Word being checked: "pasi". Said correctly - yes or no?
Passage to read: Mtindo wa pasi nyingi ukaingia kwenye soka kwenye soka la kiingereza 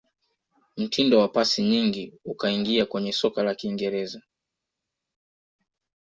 yes